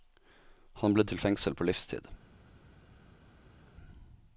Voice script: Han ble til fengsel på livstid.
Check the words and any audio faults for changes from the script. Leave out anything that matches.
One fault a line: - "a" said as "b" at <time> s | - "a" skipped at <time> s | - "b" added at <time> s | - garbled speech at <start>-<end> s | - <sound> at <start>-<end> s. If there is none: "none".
none